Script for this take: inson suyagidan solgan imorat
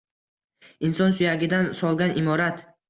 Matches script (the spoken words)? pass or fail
pass